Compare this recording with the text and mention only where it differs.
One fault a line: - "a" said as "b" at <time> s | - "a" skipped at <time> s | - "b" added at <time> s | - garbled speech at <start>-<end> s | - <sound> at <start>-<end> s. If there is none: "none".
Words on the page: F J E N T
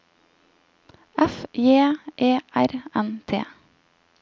- "R" added at 2.5 s